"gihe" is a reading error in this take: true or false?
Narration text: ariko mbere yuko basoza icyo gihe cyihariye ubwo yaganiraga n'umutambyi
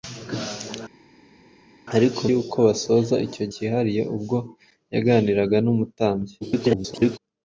true